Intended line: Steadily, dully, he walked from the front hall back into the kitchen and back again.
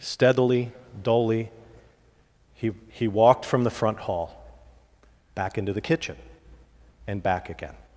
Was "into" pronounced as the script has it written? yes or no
yes